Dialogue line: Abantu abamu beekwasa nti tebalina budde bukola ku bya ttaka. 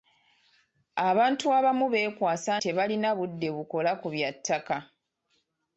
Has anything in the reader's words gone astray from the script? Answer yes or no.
yes